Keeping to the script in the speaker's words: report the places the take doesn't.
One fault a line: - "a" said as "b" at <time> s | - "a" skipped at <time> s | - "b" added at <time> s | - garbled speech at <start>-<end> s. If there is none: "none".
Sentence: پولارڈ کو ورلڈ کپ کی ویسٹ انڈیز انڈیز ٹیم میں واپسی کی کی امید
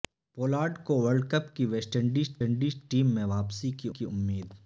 none